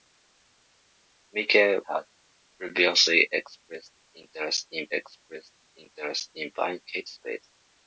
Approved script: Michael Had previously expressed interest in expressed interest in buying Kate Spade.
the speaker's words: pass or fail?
pass